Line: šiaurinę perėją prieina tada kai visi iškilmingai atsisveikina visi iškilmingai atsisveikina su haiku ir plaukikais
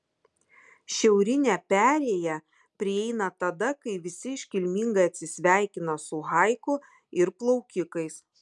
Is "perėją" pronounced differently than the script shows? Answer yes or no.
no